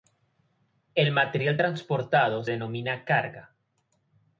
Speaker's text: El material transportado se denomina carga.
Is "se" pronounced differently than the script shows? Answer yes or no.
yes